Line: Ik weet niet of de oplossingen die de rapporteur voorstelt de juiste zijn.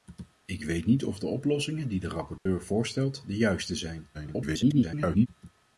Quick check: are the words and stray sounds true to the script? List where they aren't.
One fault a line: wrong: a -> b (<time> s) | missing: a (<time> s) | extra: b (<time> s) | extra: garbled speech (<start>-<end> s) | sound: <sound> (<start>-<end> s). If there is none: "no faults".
sound: dropout (2.4-2.5 s)
extra: garbled speech (4.1-5.3 s)